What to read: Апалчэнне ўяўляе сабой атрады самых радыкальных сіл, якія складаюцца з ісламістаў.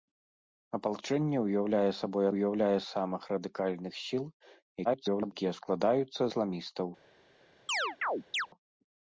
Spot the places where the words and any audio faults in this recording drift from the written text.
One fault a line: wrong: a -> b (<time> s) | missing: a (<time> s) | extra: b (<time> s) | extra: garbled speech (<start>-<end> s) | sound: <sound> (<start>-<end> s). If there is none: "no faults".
wrong: атрады -> ўяўляе (2.3 s)
extra: garbled speech (4.8-5.3 s)
missing: з (6.2 s)
sound: chirp (7.7-8.5 s)